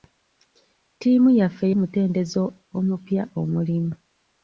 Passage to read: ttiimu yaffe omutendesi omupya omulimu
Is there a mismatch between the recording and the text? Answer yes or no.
no